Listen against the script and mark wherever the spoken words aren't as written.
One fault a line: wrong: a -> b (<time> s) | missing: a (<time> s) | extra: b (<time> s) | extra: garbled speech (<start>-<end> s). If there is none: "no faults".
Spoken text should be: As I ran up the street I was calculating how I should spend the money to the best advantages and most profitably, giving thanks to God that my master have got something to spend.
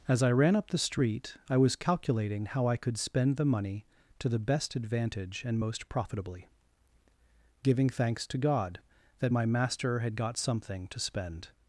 wrong: should -> could (2.8 s)
wrong: advantages -> advantage (4.8 s)
wrong: have -> had (10.0 s)